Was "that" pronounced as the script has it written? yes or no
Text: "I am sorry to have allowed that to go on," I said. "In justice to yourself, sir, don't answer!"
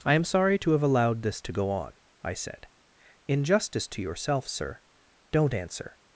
no